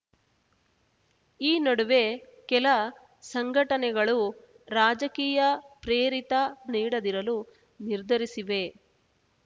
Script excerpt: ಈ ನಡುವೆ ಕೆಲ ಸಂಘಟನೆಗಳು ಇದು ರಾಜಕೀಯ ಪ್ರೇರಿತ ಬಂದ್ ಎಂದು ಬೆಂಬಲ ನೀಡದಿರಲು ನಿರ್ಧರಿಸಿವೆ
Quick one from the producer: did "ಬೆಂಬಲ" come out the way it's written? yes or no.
no